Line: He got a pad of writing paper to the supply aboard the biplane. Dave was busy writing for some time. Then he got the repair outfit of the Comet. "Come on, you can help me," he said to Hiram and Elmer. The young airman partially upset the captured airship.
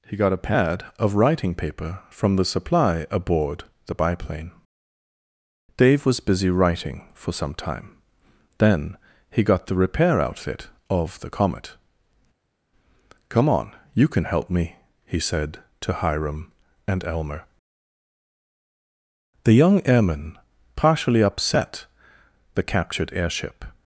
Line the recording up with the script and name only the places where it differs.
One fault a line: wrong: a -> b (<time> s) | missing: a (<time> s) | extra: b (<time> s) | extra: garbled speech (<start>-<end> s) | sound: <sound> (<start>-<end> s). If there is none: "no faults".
wrong: to -> from (2.1 s)